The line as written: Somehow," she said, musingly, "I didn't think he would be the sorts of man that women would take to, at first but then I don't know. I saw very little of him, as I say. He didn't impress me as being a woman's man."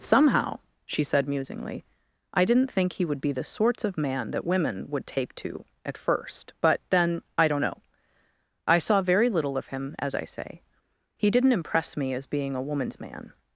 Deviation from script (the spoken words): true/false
false